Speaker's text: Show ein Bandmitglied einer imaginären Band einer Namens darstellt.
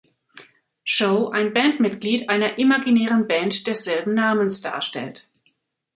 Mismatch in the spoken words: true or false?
true